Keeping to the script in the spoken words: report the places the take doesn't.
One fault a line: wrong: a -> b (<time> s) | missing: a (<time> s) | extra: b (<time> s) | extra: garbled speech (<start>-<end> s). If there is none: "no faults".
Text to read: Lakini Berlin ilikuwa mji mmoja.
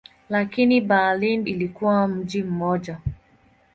no faults